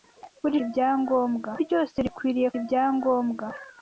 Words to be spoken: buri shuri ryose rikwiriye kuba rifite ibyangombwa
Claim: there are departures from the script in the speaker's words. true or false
true